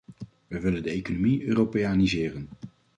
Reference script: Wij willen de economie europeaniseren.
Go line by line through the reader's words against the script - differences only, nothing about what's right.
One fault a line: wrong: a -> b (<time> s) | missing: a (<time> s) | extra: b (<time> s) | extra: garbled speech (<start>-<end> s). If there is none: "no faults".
no faults